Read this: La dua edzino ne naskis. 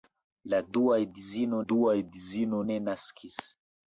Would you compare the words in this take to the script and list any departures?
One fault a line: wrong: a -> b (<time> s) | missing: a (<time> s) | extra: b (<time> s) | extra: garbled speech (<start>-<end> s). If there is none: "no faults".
extra: dua edzino (1.7 s)